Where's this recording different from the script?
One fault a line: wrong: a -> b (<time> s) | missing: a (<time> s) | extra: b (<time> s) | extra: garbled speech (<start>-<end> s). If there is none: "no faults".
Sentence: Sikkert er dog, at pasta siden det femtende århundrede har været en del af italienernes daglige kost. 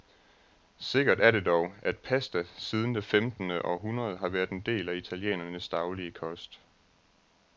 extra: det (1.3 s)